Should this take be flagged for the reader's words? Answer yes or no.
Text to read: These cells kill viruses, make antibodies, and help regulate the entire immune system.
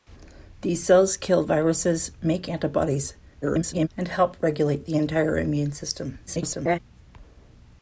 yes